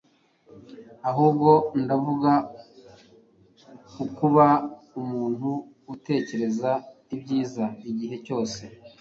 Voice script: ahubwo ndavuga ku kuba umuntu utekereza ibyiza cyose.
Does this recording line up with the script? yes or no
no